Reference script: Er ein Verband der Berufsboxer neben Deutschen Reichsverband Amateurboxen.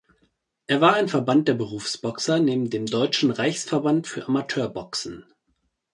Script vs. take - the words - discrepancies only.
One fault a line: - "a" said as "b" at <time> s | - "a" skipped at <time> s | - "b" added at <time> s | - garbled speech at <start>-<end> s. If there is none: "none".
- "war" added at 0.8 s
- "dem" added at 2.7 s
- "für" added at 4.1 s